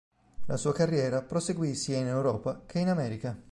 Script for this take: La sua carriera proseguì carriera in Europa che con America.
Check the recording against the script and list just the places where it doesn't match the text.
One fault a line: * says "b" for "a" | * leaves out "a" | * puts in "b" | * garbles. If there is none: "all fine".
* says "sia" for "carriera"
* says "in" for "con"